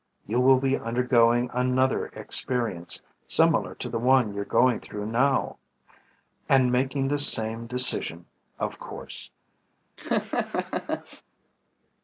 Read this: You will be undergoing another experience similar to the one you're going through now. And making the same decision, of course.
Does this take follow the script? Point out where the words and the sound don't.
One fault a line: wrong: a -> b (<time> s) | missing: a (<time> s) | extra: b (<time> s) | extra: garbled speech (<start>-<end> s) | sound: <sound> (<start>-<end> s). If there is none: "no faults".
sound: laugh (10.0-11.2 s)